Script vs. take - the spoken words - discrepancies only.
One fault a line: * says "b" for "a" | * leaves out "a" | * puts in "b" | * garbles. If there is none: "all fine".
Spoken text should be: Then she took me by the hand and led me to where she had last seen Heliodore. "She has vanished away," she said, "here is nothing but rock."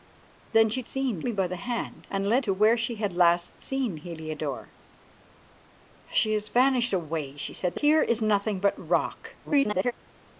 * says "seen" for "took"
* leaves out "me"
* garbles